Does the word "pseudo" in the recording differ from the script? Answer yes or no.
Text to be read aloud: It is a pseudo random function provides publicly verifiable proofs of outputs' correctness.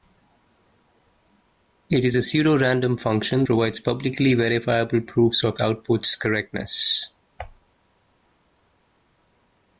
no